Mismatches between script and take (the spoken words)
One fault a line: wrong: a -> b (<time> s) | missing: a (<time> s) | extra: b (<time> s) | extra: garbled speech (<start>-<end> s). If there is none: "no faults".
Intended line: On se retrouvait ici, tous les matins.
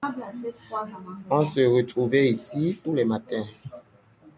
no faults